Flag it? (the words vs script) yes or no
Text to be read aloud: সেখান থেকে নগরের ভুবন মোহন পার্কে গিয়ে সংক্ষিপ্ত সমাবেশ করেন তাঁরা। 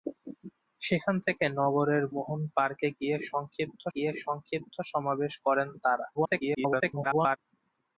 yes